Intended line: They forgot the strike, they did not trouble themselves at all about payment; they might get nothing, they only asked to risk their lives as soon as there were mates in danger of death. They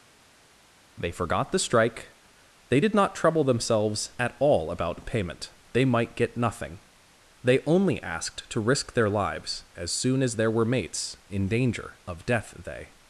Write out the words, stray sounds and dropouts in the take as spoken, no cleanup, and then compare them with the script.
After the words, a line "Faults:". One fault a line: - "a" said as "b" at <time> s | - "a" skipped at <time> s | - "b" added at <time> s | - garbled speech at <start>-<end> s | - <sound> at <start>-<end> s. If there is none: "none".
They forgot the strike, they did not trouble themselves at all about payment; they might get nothing, they only asked to risk their lives as soon as there were mates in danger of death. They
Faults:
none